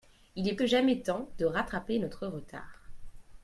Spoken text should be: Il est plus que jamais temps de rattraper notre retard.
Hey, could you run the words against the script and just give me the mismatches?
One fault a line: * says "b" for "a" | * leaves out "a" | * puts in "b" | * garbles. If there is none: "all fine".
* leaves out "plus"